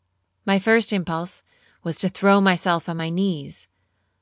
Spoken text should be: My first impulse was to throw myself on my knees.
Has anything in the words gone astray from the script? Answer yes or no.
no